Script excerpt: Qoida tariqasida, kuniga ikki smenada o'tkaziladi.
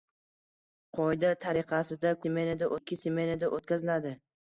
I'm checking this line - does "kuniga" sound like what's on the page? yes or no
no